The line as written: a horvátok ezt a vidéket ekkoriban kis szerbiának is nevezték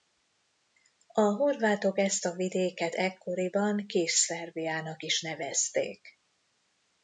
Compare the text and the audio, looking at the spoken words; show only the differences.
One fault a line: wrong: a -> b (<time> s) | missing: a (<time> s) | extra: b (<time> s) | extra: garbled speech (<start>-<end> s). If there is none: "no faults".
no faults